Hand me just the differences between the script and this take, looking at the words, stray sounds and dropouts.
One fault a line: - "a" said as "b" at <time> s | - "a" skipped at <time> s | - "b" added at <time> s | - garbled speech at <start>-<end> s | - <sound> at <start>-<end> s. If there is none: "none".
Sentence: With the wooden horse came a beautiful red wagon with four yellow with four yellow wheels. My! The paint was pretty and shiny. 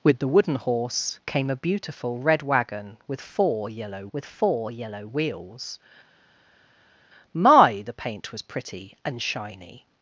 none